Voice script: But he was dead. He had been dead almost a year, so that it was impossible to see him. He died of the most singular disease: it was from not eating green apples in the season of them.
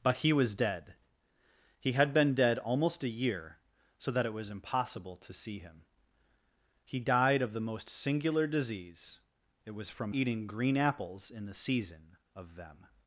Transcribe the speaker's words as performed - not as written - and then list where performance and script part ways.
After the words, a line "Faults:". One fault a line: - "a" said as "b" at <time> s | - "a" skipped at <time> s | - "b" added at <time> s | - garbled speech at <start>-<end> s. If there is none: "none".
But he was dead. He had been dead almost a year, so that it was impossible to see him. He died of the most singular disease: it was from eating green apples in the season of them.
Faults:
- "not" skipped at 10.1 s